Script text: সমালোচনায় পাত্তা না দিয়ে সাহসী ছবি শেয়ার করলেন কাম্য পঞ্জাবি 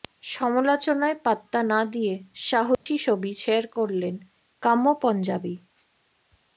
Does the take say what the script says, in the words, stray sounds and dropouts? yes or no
no